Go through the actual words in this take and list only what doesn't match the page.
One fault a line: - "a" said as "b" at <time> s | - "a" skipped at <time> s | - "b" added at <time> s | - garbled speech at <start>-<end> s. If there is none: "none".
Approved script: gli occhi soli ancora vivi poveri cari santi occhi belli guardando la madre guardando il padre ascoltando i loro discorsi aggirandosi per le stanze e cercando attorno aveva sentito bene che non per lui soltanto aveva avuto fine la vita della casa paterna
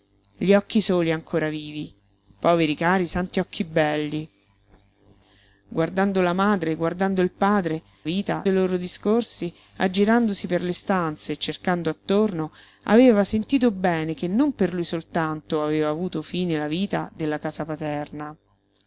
- "ascoltando" said as "vita" at 8.0 s